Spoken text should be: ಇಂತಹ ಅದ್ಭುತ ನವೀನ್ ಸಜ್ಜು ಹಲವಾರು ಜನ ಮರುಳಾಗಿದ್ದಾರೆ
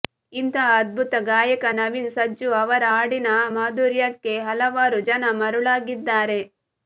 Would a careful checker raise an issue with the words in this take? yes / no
yes